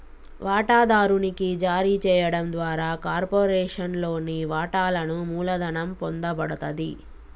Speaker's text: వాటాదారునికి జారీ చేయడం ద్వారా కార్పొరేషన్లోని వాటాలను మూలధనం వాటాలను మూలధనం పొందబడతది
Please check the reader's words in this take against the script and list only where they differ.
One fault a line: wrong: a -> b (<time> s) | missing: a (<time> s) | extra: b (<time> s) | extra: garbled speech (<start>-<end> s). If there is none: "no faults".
missing: వాటాలను మూలధనం (5.9 s)